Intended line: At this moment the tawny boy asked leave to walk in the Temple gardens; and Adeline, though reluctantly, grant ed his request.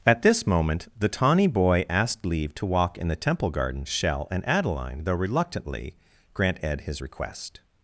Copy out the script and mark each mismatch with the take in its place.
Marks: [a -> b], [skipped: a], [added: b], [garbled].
At this moment the tawny boy asked leave to walk in the Temple [gardens; -> garden shell] and Adeline, though reluctantly, grant ed his request.